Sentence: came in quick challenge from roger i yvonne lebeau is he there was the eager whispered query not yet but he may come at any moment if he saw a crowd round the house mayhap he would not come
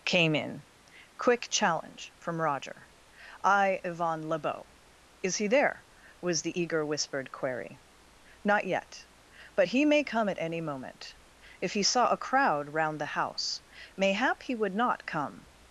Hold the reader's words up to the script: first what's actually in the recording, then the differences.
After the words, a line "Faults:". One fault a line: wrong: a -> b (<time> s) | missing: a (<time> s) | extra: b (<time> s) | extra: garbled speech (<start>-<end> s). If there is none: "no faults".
came in quick challenge from roger i yvonne lebeau is he there was the eager whispered query not yet but he may come at any moment if he saw a crowd round the house mayhap he would not come
Faults:
no faults